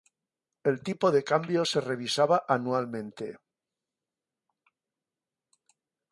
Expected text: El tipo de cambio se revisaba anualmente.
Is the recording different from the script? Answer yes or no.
no